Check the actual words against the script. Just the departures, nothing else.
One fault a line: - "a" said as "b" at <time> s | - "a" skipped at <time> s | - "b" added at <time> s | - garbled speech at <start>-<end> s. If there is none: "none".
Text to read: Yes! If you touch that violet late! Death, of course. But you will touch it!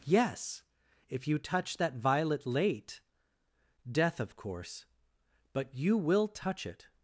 none